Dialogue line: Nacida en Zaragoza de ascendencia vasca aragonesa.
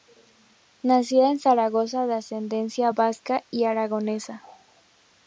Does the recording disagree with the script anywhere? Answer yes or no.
yes